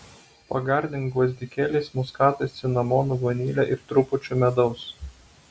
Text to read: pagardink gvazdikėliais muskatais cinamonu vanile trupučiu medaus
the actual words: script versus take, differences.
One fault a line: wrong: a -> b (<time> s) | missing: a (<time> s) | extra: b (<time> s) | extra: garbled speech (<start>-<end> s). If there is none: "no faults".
extra: ir (3.8 s)